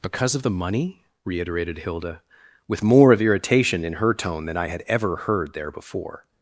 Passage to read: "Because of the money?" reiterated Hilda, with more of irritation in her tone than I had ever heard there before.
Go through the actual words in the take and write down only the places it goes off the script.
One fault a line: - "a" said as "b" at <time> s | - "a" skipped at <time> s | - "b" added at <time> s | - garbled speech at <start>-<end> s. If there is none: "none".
none